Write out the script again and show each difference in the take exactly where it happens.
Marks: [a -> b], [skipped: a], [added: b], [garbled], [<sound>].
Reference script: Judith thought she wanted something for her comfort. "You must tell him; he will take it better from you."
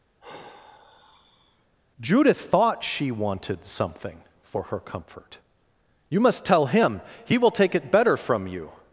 [sigh] Judith thought she wanted something for her comfort. "You must tell him; he will take it better from you."